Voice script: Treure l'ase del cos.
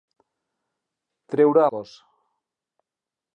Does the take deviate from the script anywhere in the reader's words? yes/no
yes